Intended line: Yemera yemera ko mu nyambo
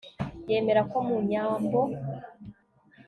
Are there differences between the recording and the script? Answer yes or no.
yes